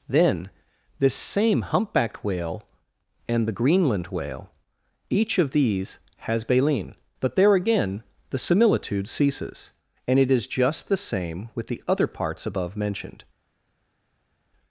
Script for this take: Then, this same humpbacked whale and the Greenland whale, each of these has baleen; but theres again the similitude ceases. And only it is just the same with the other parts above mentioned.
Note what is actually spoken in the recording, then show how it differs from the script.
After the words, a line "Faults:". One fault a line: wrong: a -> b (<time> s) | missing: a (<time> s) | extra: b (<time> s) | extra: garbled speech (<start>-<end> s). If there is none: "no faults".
Then, this same humpbacked whale and the Greenland whale, each of these has baleen; but there again the similitude ceases. And it is just the same with the other parts above mentioned.
Faults:
wrong: theres -> there (7.3 s)
missing: only (10.2 s)